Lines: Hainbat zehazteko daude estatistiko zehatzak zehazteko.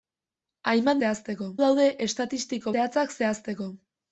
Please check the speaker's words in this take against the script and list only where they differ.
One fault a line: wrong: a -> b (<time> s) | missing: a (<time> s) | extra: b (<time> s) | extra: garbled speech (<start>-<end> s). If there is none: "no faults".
no faults